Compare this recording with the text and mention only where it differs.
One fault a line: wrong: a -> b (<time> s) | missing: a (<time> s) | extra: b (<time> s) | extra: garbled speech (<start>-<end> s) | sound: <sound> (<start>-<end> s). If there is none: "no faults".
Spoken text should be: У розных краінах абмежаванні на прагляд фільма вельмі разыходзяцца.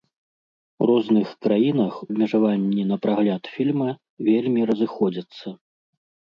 no faults